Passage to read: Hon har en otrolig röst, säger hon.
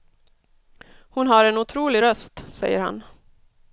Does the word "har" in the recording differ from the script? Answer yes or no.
no